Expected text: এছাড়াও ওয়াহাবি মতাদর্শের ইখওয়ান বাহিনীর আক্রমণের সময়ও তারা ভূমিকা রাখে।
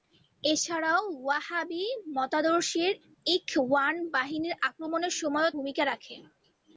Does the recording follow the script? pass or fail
fail